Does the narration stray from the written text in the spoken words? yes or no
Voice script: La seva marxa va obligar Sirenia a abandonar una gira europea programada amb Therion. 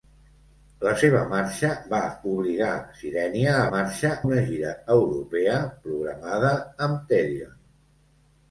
yes